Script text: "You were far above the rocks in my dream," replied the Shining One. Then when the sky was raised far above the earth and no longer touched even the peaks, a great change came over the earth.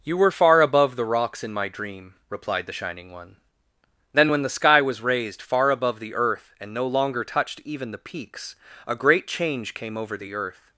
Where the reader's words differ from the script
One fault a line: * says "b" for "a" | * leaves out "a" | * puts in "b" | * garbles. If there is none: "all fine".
all fine